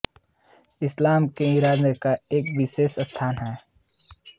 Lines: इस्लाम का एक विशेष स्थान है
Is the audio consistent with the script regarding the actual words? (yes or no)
no